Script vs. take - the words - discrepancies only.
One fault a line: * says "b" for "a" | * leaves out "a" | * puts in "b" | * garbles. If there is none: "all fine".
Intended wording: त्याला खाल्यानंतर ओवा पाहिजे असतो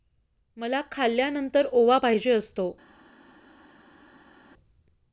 * says "मला" for "त्याला"